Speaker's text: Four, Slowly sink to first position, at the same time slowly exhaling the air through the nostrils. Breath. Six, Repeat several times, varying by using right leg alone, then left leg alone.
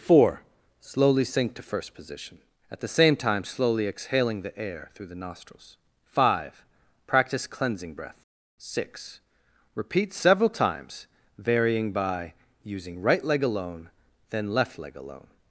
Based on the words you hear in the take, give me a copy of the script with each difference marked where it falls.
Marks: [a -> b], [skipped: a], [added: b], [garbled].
Four, Slowly sink to first position, at the same time slowly exhaling the air through the nostrils. [added: Five Practice Cleansing] Breath. Six, Repeat several times, varying by using right leg alone, then left leg alone.